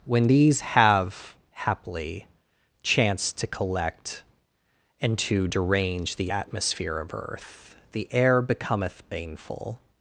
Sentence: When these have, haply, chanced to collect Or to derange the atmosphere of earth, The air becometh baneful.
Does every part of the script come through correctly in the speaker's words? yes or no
no